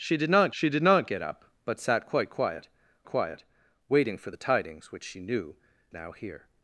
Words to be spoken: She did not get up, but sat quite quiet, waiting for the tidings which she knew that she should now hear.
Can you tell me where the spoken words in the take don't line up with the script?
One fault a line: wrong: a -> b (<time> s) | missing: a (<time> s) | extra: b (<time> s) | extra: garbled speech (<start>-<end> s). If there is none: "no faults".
extra: she did not (0.5 s)
extra: quiet (3.1 s)
missing: that she should (5.6 s)